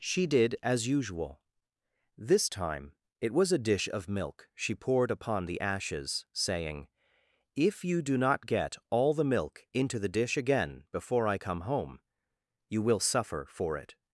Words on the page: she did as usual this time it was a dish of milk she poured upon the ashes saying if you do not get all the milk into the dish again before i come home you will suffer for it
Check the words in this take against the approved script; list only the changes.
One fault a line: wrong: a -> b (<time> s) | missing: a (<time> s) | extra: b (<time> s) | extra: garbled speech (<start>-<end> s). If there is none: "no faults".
no faults